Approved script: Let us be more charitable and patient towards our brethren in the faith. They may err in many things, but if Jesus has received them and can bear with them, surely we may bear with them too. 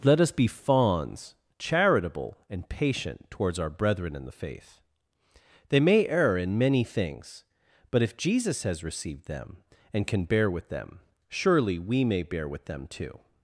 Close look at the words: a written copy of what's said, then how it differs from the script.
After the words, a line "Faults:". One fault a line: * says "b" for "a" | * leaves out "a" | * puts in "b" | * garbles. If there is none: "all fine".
Let us be fawns charitable and patient towards our brethren in the faith. They may err in many things, but if Jesus has received them and can bear with them, surely we may bear with them too.
Faults:
* says "fawns" for "more"